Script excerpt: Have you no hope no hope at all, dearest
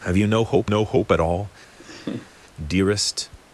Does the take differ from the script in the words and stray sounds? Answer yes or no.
yes